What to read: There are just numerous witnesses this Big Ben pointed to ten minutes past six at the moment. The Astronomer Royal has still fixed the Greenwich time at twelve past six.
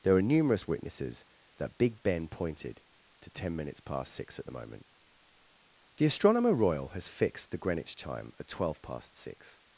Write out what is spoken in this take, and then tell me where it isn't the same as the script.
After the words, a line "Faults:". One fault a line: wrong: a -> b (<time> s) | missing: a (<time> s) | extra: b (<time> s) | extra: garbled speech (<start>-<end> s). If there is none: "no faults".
There are numerous witnesses that Big Ben pointed to ten minutes past six at the moment. The Astronomer Royal has fixed the Greenwich time at twelve past six.
Faults:
missing: just (0.2 s)
wrong: this -> that (1.6 s)
missing: still (7.1 s)